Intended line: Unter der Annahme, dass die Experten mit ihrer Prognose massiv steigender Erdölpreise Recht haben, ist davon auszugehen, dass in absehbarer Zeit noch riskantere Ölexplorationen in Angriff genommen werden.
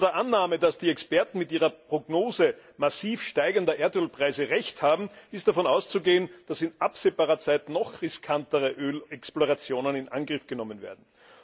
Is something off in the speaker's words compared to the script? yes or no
no